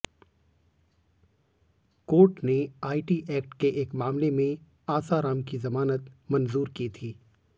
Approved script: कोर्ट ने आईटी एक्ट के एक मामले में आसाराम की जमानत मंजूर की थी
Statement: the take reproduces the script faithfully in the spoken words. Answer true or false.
true